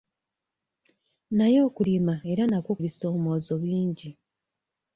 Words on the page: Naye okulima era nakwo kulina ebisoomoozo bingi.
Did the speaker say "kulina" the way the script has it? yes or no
no